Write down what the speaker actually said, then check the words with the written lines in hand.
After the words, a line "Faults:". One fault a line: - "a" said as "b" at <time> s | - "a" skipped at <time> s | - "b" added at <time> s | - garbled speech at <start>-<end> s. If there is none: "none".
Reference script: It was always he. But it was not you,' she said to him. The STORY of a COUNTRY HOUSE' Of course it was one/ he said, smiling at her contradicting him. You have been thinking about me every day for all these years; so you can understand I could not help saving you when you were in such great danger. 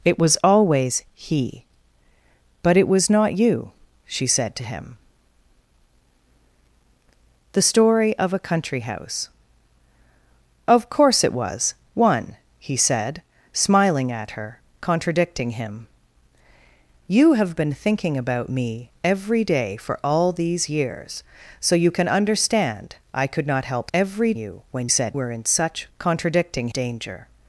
It was always he. But it was not you,' she said to him. The STORY of a COUNTRY HOUSE' Of course it was one/ he said, smiling at her contradicting him. You have been thinking about me every day for all these years; so you can understand I could not help every you when said were in such contradicting danger.
Faults:
- "saving" said as "every" at 23.9 s
- "you" said as "said" at 24.9 s
- "great" said as "contradicting" at 26.0 s